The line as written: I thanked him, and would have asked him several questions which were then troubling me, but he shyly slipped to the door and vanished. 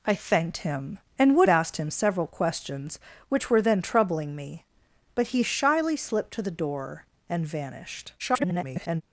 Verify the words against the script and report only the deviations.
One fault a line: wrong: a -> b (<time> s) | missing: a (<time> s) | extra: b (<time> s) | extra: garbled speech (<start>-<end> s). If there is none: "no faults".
missing: have (1.5 s)
extra: garbled speech (8.2-9.0 s)